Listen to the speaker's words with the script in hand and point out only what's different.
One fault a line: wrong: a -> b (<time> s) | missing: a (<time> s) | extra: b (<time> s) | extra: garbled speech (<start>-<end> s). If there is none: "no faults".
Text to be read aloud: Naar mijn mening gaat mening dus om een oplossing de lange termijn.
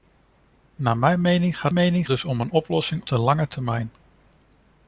no faults